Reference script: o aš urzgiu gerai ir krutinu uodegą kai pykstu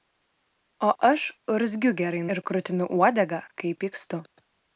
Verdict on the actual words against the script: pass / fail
pass